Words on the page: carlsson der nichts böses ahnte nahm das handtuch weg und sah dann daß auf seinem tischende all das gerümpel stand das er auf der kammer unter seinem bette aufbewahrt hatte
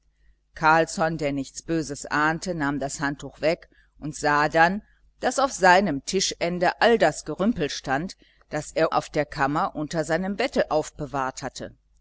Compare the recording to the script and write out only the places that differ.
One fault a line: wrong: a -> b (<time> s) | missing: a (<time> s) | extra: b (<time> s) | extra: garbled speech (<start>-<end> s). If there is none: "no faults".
no faults